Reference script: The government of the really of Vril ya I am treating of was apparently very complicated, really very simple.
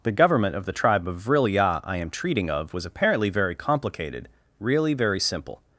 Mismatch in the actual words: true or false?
true